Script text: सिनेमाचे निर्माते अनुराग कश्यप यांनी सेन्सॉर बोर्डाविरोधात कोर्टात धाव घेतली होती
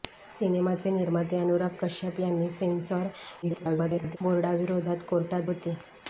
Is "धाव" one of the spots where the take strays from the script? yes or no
yes